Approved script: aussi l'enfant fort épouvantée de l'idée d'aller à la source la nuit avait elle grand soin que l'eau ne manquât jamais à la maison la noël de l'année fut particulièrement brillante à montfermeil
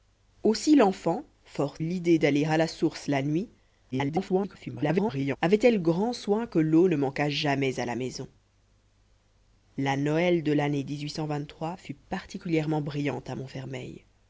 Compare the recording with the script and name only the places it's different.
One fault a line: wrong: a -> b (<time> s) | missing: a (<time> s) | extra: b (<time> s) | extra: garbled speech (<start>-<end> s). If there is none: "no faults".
missing: épouvantée de (1.8 s)
extra: garbled speech (3.9-5.4 s)